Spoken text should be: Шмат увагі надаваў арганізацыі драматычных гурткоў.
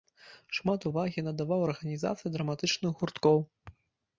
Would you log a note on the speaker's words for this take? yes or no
no